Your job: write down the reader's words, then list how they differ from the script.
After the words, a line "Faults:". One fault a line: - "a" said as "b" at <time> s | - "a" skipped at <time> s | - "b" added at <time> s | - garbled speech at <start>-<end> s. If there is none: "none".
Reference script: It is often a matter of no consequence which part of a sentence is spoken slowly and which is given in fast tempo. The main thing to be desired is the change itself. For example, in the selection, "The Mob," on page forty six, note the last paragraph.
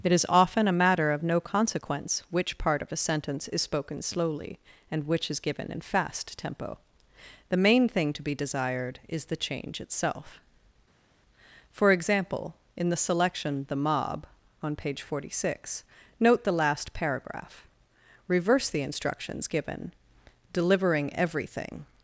It is often a matter of no consequence which part of a sentence is spoken slowly and which is given in fast tempo. The main thing to be desired is the change itself. For example, in the selection, "The Mob," on page forty six, note the last paragraph. Reverse the instructions given, delivering everything
Faults:
- "Reverse the instructions given delivering everything" added at 18.3 s